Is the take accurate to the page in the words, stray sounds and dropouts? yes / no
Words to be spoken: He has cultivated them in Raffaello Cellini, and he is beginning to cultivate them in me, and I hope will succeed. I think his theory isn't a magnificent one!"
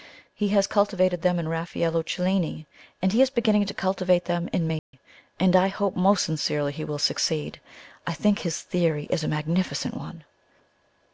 no